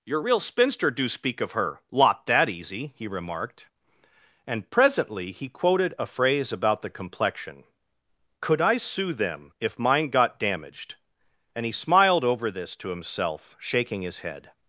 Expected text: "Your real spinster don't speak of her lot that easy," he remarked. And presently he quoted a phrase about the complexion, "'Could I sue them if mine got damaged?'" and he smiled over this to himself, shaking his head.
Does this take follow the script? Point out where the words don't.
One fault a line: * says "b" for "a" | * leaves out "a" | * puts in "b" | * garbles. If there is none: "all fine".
* says "do" for "don't"